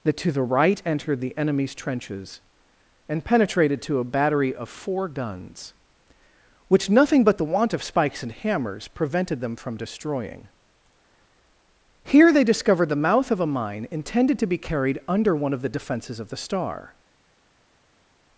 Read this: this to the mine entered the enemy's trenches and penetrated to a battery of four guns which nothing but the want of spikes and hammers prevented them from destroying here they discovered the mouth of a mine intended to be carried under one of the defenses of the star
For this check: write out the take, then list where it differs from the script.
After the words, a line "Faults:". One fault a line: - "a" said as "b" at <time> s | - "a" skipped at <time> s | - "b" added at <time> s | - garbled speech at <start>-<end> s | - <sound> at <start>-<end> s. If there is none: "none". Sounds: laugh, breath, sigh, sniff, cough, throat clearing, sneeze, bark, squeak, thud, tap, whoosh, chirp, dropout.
that to the right entered the enemy's trenches and penetrated to a battery of four guns which nothing but the want of spikes and hammers prevented them from destroying here they discovered the mouth of a mine intended to be carried under one of the defenses of the star
Faults:
- "this" said as "that" at 0.0 s
- "mine" said as "right" at 0.4 s